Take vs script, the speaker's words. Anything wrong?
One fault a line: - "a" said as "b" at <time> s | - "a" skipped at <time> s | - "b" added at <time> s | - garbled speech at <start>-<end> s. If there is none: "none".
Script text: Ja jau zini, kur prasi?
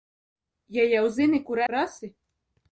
none